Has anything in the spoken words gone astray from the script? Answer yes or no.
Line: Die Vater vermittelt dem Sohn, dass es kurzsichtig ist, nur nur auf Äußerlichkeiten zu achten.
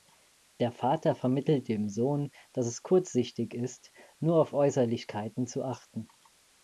yes